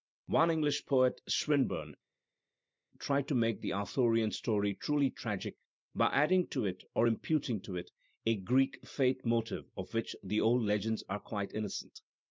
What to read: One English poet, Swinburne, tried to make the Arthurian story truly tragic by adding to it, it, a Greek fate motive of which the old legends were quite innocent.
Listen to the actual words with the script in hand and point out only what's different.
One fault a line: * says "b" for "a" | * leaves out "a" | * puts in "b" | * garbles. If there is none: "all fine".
* puts in "or imputing to"
* says "are" for "were"